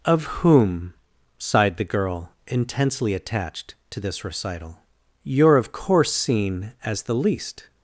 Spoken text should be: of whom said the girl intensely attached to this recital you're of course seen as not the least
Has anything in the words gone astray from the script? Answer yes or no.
yes